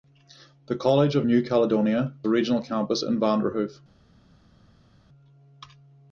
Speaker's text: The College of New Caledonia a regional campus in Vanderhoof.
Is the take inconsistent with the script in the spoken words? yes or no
no